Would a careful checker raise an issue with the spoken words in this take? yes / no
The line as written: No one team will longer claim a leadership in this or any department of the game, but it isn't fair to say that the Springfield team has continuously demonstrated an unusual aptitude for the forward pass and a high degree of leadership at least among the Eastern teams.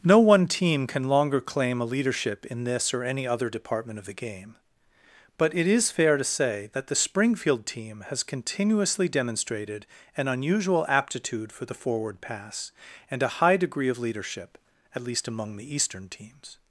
yes